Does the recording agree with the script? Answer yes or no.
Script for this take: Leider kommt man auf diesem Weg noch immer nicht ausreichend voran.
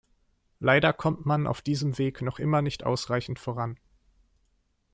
yes